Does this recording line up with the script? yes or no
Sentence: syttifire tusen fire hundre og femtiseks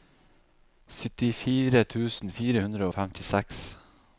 yes